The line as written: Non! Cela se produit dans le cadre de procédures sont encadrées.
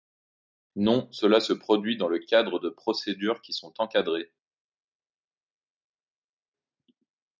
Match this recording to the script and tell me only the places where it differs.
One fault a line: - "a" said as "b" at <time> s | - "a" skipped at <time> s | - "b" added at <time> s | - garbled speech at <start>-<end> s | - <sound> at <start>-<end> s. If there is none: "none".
- "qui" added at 3.4 s